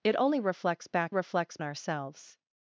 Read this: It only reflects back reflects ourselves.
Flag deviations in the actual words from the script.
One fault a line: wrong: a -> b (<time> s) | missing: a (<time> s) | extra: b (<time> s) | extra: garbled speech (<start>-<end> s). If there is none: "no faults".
no faults